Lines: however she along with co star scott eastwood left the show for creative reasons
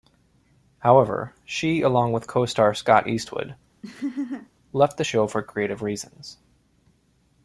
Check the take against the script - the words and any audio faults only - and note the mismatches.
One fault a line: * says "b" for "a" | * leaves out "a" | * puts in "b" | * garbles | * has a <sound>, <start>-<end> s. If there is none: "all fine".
* has a laugh, 3.8-4.5 s